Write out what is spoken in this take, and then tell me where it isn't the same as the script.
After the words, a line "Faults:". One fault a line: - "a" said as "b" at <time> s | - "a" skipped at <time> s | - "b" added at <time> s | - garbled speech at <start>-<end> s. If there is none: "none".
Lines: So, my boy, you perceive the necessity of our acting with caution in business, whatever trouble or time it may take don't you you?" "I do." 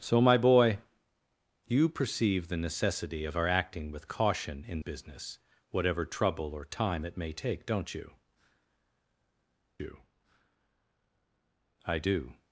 So, my boy, you perceive the necessity of our acting with caution in business, whatever trouble or time it may take don't you you?" "I do."
Faults:
none